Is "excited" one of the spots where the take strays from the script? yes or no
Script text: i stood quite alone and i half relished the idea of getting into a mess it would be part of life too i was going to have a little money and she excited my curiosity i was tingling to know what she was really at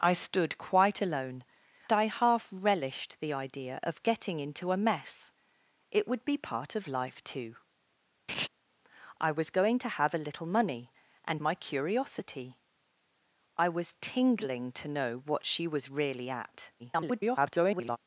yes